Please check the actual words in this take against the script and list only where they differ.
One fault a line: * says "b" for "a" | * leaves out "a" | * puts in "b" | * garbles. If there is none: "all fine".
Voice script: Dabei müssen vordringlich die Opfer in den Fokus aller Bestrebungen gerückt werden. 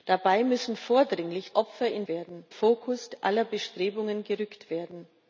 * leaves out "die"
* says "werden" for "den"